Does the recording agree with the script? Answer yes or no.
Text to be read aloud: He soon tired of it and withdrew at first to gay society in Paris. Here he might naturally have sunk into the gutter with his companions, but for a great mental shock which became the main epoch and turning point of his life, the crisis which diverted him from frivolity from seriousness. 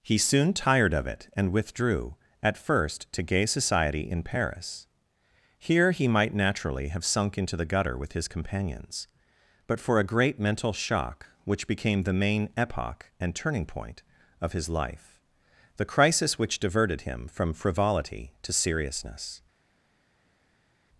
no